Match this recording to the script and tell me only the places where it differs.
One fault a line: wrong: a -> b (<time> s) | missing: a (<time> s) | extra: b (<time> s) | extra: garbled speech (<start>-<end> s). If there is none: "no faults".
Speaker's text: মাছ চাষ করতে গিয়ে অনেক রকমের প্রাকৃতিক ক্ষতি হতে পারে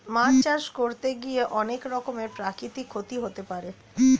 no faults